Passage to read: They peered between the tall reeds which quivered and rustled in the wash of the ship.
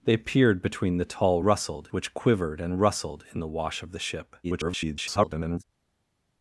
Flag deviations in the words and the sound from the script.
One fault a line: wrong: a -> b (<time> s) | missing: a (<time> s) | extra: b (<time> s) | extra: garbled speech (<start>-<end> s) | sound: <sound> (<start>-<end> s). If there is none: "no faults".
wrong: reeds -> rustled (1.4 s)
extra: garbled speech (4.4-5.6 s)